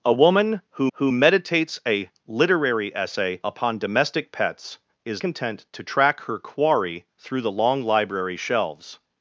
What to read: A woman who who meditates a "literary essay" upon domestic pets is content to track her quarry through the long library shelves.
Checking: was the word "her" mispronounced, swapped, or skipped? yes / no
no